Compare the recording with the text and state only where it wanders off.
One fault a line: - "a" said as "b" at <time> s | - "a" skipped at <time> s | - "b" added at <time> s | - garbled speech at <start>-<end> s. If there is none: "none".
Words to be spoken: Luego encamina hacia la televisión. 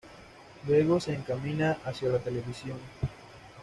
- "se" added at 1.0 s